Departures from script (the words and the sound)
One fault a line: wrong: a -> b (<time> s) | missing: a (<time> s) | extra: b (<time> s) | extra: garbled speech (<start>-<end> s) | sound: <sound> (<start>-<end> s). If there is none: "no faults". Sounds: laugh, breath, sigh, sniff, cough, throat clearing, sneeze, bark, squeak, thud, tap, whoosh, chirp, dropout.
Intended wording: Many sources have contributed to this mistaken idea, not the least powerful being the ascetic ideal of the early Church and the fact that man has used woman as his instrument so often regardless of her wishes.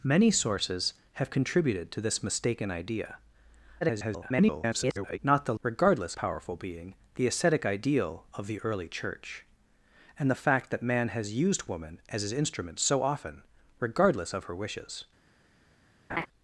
extra: garbled speech (3.8-5.2 s)
wrong: least -> regardless (5.6 s)
sound: laugh (16.1-16.3 s)